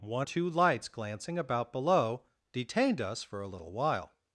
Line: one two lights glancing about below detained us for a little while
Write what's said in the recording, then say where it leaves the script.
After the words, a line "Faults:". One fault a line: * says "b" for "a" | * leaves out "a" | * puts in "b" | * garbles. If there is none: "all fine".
one two lights glancing about below detained us for a little while
Faults:
all fine